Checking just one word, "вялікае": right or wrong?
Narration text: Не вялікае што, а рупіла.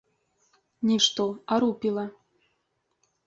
wrong